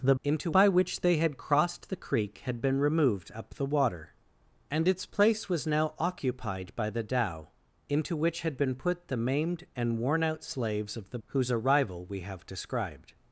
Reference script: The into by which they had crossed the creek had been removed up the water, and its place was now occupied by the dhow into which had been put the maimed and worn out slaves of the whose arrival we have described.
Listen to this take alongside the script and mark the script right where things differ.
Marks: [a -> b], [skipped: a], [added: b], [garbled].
The into by which they had crossed the creek had been removed up the water, and its place was now occupied by the dhow into which had been put the maimed and worn out slaves of the whose arrival we have described.